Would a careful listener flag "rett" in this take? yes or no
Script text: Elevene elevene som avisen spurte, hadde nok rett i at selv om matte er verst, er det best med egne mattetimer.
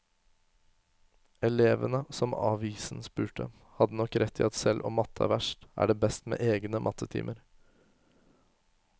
no